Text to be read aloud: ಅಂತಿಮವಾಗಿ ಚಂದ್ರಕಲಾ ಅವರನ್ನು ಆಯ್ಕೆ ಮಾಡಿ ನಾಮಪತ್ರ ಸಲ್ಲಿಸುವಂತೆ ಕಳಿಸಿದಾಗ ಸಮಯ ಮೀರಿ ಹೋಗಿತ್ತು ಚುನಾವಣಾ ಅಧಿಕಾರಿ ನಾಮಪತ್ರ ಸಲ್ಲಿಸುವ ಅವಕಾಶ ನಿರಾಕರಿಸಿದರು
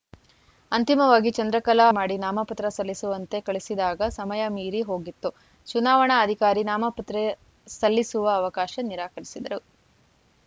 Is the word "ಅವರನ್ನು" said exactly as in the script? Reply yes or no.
no